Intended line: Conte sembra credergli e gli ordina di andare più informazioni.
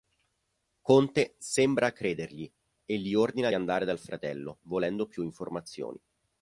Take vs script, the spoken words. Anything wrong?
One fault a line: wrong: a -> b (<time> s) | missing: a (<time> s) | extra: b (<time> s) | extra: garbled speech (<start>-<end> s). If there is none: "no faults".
extra: dal fratello volendo (3.9 s)